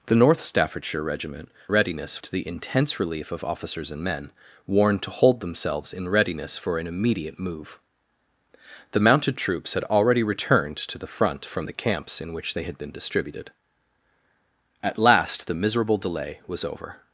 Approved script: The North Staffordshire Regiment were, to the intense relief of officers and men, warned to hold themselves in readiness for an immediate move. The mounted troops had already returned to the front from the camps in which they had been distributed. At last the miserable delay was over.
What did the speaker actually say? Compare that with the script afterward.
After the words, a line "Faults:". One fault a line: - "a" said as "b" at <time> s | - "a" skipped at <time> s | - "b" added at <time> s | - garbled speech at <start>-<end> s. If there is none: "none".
The North Staffordshire Regiment readiness, to the intense relief of officers and men, warned to hold themselves in readiness for an immediate move. The mounted troops had already returned to the front from the camps in which they had been distributed. At last the miserable delay was over.
Faults:
- "were" said as "readiness" at 1.7 s